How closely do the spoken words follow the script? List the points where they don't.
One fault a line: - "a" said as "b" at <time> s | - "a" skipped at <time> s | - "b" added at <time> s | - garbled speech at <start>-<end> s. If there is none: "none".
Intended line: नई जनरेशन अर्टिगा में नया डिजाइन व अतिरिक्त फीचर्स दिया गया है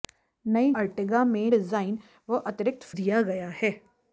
- "जनरेशन" skipped at 0.7 s
- "नया" skipped at 1.5 s
- "फीचर्स" skipped at 2.9 s